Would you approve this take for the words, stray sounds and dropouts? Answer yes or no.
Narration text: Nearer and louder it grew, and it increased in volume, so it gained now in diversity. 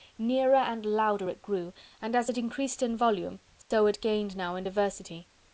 no